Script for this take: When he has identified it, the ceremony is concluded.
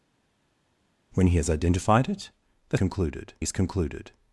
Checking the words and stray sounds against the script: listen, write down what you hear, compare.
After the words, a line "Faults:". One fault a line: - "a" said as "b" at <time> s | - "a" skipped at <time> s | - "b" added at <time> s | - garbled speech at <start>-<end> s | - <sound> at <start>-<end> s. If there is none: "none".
When he has identified it, the concluded is concluded.
Faults:
- "ceremony" said as "concluded" at 2.7 s